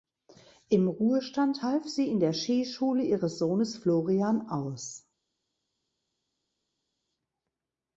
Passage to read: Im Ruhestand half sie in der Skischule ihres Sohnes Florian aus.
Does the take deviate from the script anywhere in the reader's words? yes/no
no